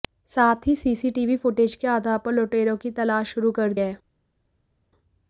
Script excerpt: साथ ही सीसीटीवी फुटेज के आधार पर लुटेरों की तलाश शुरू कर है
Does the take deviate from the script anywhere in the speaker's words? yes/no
no